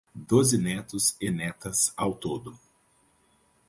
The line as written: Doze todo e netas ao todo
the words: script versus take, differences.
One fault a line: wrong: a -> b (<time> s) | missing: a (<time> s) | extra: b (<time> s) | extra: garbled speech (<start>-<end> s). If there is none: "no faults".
wrong: todo -> netos (0.6 s)